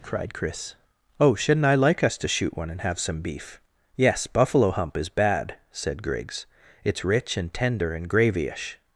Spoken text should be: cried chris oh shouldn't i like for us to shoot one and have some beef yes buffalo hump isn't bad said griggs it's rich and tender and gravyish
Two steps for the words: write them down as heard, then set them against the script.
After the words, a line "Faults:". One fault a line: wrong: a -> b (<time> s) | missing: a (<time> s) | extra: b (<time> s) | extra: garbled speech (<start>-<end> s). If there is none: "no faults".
cried chris oh shouldn't i like us to shoot one and have some beef yes buffalo hump is bad said griggs it's rich and tender and gravyish
Faults:
missing: for (2.0 s)
wrong: isn't -> is (5.0 s)